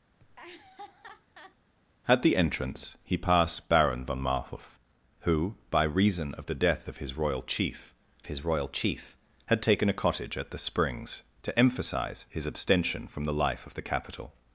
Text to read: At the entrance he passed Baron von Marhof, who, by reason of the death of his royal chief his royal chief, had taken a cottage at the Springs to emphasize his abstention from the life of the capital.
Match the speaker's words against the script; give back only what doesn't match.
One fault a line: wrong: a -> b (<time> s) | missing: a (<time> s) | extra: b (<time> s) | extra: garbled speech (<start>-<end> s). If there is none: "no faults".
no faults